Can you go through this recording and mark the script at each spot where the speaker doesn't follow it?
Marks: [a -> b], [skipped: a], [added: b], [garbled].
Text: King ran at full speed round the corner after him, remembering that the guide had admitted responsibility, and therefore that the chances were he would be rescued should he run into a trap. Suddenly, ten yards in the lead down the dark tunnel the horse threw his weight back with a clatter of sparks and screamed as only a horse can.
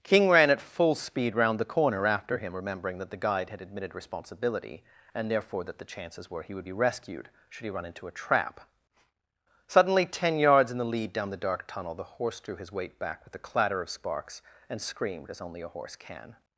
King ran at full speed round the corner after him, remembering that the guide had admitted responsibility, and therefore that the chances were he would be rescued should he run into a trap. Suddenly, ten yards in the lead down the dark tunnel the horse threw his weight back with a clatter of sparks and screamed as only a horse can.